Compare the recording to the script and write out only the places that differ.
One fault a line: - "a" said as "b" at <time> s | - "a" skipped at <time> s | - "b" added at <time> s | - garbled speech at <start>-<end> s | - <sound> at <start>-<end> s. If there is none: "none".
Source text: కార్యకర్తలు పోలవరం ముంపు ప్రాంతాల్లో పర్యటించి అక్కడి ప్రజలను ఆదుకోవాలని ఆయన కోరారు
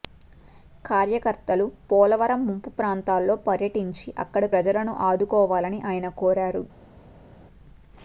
none